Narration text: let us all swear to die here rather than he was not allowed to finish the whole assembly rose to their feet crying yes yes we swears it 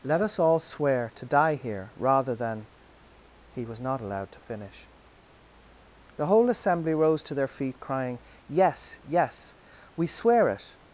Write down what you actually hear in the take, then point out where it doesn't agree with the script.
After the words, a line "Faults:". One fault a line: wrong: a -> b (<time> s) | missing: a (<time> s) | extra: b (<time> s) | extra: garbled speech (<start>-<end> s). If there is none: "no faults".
let us all swear to die here rather than he was not allowed to finish the whole assembly rose to their feet crying yes yes we swear it
Faults:
wrong: swears -> swear (10.1 s)